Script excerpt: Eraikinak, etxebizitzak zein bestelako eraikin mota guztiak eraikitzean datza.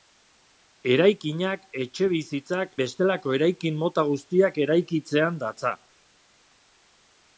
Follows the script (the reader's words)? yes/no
no